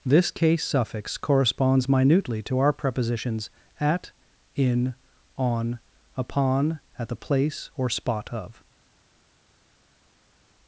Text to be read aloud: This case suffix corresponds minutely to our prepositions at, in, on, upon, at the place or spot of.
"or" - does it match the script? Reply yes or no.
yes